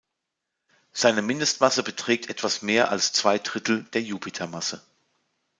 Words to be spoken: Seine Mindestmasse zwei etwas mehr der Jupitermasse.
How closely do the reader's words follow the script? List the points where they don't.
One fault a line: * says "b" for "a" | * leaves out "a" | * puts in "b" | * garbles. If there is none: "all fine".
* says "beträgt" for "zwei"
* puts in "als zwei Drittel"